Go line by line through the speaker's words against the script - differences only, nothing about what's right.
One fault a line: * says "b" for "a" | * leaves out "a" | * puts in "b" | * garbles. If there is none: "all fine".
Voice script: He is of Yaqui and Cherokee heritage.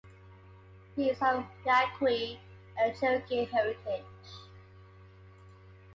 all fine